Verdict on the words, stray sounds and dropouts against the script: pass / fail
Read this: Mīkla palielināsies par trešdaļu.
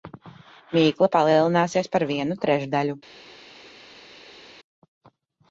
fail